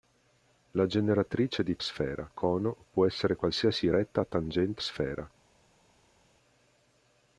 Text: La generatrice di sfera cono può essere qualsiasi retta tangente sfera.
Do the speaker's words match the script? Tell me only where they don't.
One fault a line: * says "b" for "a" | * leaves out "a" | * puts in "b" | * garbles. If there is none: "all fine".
all fine